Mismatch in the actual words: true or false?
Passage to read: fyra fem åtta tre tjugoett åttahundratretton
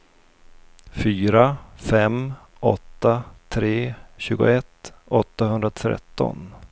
false